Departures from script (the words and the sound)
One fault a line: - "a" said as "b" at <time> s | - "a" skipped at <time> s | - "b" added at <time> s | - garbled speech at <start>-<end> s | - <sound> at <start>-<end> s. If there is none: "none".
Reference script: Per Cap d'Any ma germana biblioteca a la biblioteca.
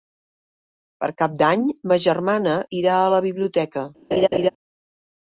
- "biblioteca" said as "irà" at 2.8 s
- laugh at 4.1-4.5 s